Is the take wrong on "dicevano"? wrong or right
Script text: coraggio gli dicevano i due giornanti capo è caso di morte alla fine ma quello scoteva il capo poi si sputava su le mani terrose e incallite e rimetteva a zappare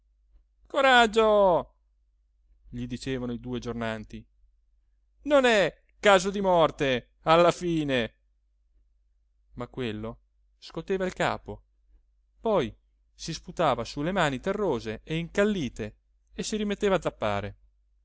right